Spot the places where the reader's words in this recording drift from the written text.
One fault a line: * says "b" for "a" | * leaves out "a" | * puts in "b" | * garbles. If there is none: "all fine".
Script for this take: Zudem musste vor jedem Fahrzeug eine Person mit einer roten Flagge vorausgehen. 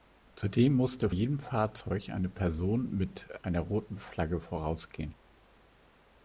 * leaves out "vor"